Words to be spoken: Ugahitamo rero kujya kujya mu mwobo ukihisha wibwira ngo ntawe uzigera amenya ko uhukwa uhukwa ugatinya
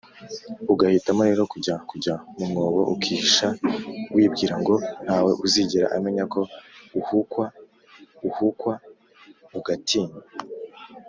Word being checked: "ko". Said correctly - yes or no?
yes